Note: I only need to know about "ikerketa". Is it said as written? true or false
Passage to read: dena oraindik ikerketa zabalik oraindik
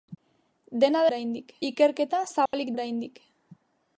true